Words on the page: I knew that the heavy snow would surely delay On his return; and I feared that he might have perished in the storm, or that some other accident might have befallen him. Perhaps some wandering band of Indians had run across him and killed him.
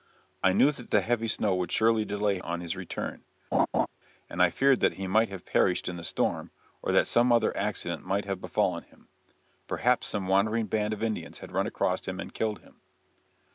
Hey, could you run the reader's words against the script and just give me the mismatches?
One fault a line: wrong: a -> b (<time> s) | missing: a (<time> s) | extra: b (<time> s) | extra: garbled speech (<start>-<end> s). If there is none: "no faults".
no faults